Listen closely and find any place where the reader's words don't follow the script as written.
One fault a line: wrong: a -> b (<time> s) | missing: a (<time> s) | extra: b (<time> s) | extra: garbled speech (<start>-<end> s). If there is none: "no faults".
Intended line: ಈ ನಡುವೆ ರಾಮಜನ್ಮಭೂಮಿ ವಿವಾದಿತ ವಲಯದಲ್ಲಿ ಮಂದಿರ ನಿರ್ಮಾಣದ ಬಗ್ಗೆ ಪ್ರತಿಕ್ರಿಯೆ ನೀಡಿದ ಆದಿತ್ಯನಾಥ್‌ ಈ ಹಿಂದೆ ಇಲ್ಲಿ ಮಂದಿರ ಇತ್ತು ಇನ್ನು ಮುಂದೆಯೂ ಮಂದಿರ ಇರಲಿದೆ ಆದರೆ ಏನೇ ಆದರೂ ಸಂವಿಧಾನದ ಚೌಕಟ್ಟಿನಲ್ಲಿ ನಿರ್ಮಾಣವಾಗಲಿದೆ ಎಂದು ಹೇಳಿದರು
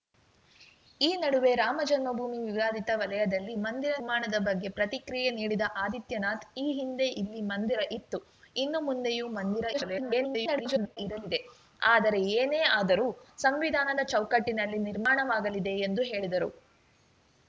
extra: garbled speech (9.7-11.0 s)